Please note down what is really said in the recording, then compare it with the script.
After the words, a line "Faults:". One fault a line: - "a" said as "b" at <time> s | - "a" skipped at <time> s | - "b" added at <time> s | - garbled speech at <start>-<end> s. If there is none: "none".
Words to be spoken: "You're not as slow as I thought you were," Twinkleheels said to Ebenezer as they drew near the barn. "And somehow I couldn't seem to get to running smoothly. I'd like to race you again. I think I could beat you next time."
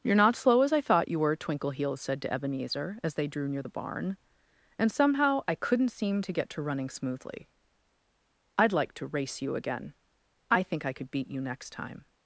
"You're not slow as I thought you were," Twinkleheels said to Ebenezer as they drew near the barn. "And somehow I couldn't seem to get to running smoothly. I'd like to race you again. I think I could beat you next time."
Faults:
- "as" skipped at 0.3 s